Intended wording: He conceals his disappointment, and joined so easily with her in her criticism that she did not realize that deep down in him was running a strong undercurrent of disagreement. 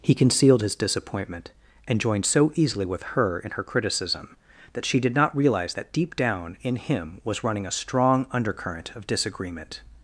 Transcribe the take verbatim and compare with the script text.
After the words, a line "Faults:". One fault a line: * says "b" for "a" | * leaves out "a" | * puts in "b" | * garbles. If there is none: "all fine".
He concealed his disappointment, and joined so easily with her in her criticism that she did not realize that deep down in him was running a strong undercurrent of disagreement.
Faults:
* says "concealed" for "conceals"